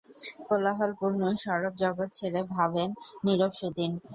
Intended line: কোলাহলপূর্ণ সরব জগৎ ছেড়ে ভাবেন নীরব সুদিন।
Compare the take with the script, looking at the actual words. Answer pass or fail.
pass